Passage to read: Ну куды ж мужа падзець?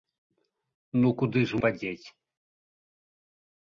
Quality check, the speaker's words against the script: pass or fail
fail